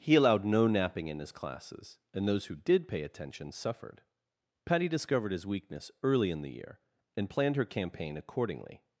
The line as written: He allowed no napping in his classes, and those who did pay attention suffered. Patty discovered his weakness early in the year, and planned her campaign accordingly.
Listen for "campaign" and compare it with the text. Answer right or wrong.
right